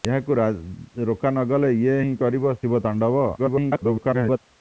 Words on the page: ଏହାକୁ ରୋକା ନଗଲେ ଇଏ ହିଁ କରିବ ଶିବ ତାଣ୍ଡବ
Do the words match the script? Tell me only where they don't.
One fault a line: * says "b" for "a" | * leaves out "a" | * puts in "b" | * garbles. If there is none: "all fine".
* garbles